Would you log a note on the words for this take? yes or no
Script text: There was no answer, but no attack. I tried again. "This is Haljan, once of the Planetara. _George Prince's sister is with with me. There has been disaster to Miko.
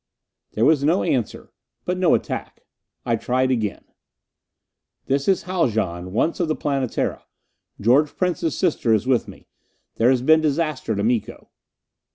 yes